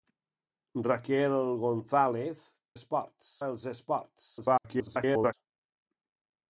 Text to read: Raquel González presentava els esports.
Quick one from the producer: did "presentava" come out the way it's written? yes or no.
no